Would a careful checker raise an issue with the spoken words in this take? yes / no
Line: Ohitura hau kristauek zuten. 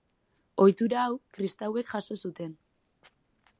yes